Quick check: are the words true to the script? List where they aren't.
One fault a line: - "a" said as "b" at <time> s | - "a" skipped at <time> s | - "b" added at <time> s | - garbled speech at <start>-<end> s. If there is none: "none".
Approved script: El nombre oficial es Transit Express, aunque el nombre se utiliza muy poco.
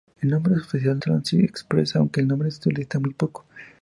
- "es" skipped at 1.0 s